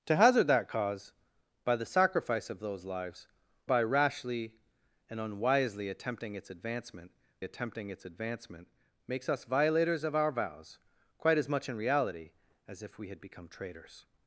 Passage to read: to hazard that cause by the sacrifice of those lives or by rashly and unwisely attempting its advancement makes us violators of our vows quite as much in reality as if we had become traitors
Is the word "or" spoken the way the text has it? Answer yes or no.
no